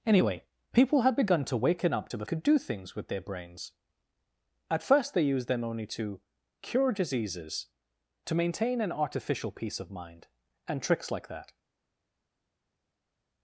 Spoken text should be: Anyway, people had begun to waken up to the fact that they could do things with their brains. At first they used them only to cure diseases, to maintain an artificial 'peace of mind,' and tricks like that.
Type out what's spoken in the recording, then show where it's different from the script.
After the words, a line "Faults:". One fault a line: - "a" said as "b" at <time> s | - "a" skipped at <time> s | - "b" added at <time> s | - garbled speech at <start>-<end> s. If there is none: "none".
Anyway, people had begun to waken up to the could do things with their brains. At first they used them only to cure diseases, to maintain an artificial 'peace of mind,' and tricks like that.
Faults:
- "fact that they" skipped at 2.2 s